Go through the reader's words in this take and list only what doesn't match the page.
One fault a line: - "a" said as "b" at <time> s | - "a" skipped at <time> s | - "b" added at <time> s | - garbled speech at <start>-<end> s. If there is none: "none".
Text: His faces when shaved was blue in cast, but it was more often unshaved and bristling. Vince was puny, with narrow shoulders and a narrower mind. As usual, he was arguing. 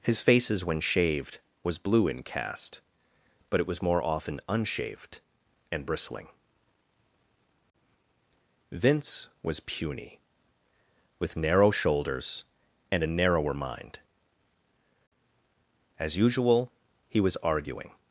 none